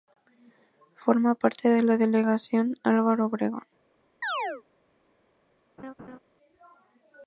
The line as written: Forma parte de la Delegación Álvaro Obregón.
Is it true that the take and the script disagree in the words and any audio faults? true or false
true